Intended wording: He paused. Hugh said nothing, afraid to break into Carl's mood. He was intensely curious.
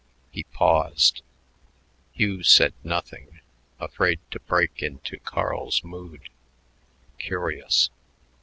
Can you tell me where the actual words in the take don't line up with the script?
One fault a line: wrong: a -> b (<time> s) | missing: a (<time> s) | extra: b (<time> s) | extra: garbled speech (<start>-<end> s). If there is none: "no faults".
missing: He was intensely (6.3 s)